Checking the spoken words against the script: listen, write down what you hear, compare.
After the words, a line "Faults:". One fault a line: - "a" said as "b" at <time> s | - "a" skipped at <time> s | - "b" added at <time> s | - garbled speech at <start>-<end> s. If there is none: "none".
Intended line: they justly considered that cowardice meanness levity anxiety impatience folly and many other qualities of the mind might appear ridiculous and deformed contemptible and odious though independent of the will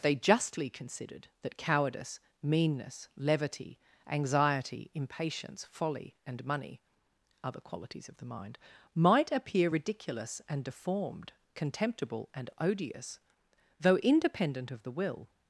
they justly considered that cowardice meanness levity anxiety impatience folly and money other qualities of the mind might appear ridiculous and deformed contemptible and odious though independent of the will
Faults:
- "many" said as "money" at 6.4 s